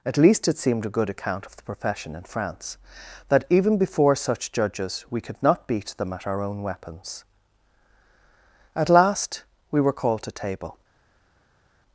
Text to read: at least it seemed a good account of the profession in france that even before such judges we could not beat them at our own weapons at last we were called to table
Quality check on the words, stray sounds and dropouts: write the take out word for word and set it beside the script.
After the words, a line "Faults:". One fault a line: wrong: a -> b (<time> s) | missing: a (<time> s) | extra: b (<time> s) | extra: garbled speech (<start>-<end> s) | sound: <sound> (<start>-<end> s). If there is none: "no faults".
at least it seemed a good account of the profession in france that even before such judges we could not beat them at our own weapons at last we were called to table
Faults:
no faults